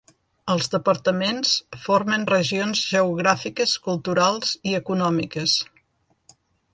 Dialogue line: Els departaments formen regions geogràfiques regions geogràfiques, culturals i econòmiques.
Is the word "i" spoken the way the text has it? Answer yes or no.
yes